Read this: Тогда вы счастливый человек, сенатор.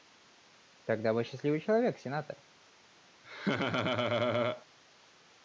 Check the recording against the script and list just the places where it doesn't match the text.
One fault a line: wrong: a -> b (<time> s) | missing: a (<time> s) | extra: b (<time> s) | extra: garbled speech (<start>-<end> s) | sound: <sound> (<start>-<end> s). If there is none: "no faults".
sound: laugh (3.2-4.7 s)